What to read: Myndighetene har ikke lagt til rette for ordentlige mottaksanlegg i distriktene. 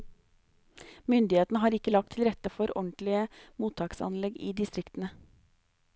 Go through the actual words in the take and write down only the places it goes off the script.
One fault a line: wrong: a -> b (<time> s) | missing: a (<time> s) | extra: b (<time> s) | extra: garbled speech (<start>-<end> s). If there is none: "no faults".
no faults